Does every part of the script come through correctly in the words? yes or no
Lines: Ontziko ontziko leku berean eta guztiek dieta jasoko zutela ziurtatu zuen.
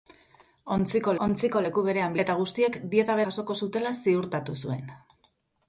yes